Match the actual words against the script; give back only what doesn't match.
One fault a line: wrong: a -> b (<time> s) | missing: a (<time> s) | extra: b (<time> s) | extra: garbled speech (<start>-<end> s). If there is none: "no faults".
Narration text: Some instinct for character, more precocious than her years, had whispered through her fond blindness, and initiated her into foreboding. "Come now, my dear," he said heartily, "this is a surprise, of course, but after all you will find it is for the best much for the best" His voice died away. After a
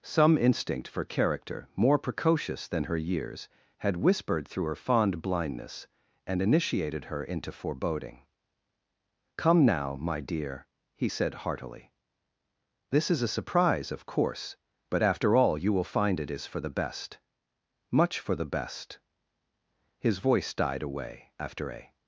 no faults